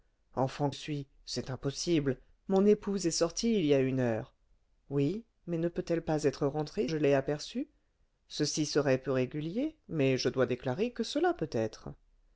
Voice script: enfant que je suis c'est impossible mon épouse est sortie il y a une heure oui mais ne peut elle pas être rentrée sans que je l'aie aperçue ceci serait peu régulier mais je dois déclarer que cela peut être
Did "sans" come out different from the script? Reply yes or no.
yes